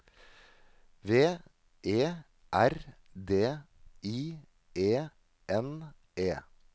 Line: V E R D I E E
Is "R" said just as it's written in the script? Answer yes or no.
yes